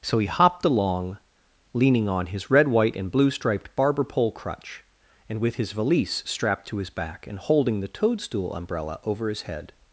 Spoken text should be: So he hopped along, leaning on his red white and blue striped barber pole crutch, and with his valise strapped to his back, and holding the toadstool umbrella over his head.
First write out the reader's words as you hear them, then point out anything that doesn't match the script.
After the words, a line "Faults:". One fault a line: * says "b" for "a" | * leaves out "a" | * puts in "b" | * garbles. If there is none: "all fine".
So he hopped along, leaning on his red white and blue striped barber pole crutch, and with his valise strapped to his back, and holding the toadstool umbrella over his head.
Faults:
all fine